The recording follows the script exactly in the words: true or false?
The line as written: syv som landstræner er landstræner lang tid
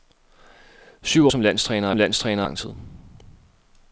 true